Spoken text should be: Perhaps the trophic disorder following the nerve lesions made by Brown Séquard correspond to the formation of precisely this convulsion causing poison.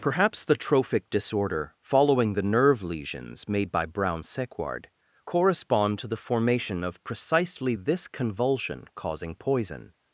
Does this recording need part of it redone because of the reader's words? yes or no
no